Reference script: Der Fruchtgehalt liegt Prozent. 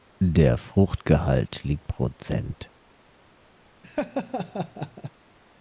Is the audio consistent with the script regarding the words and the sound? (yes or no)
no